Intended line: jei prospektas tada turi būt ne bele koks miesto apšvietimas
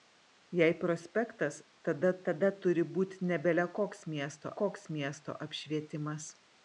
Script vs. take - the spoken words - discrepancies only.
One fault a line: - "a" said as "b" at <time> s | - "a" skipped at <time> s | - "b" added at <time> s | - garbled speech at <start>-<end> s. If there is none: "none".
- "tada" added at 2.3 s
- "koks miesto" added at 4.6 s